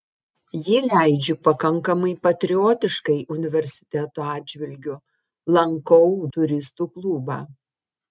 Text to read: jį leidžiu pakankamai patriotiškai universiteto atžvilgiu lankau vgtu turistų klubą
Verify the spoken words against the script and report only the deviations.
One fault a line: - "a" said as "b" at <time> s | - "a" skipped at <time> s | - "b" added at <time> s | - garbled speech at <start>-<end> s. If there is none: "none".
- "vgtu" skipped at 6.1 s